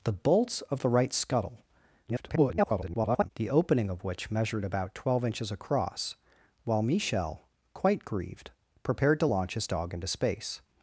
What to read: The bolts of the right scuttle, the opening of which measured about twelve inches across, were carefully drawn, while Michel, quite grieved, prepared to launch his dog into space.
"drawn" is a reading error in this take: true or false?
true